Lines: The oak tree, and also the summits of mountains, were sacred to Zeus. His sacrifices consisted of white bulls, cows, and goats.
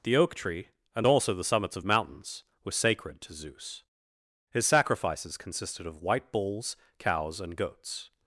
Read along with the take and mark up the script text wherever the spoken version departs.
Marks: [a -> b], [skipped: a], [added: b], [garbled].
The oak tree, and also the summits of mountains, were sacred to Zeus. His sacrifices consisted of white bulls, cows, and goats.